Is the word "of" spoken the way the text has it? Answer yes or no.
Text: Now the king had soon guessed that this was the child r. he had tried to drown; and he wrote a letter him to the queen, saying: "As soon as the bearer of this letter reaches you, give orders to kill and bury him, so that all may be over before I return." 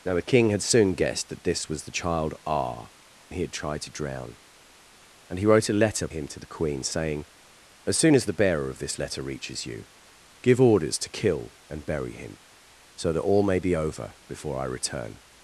yes